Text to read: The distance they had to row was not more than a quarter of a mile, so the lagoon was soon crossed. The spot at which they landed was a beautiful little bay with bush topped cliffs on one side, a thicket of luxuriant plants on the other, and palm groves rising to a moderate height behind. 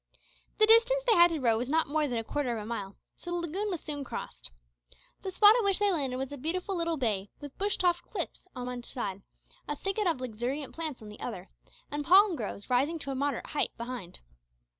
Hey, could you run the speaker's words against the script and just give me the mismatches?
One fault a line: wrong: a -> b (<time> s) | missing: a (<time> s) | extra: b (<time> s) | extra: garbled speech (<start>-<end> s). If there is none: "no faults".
no faults